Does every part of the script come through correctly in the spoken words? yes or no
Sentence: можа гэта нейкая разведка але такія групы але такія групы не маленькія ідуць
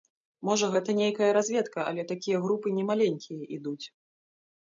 no